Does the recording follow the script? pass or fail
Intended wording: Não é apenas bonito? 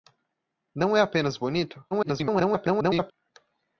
fail